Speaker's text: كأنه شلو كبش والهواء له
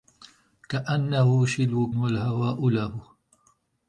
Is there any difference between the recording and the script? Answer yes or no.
yes